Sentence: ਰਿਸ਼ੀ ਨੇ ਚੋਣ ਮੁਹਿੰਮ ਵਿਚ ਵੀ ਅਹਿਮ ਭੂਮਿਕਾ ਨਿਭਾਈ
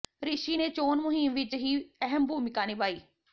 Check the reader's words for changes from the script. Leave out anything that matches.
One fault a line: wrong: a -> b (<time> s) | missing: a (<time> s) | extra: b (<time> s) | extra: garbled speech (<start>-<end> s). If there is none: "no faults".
no faults